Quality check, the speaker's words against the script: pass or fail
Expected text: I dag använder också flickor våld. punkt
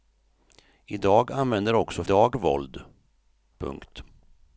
fail